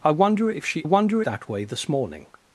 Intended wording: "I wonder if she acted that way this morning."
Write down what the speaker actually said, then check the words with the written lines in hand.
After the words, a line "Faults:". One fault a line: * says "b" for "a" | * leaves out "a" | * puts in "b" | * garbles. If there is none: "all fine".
"I wonder if she wonder that way this morning."
Faults:
* says "wonder" for "acted"